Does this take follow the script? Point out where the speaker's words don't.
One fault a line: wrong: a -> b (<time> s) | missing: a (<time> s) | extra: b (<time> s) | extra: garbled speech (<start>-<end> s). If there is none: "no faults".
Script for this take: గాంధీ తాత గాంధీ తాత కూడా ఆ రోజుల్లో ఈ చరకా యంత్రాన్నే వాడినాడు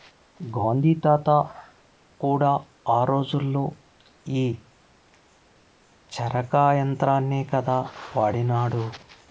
missing: గాంధీ తాత (1.3 s)
extra: కదా (7.4 s)